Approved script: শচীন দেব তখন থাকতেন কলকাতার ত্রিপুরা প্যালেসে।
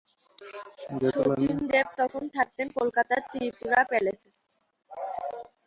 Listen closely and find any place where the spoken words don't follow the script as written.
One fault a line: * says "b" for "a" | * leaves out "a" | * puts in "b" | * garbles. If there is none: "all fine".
all fine